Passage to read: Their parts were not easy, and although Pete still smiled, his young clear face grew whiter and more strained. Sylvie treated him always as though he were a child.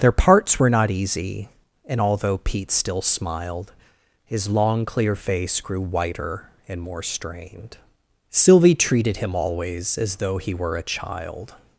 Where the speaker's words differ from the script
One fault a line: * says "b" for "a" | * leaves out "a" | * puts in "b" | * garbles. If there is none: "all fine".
* says "long" for "young"